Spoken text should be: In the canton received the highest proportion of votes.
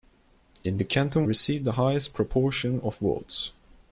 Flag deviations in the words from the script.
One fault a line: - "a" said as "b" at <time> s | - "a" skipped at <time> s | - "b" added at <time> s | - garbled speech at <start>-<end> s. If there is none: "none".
none